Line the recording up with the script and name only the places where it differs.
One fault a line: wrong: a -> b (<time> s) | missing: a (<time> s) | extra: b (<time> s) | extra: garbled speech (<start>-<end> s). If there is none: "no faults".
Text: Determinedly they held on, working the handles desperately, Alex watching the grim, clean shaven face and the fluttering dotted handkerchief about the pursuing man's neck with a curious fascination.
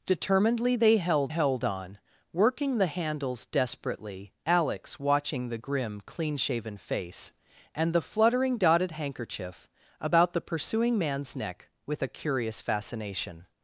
extra: held (1.3 s)